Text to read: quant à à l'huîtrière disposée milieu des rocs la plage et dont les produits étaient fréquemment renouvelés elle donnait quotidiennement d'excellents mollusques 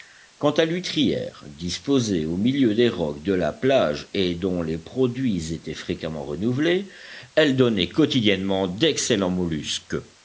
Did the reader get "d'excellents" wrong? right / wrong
right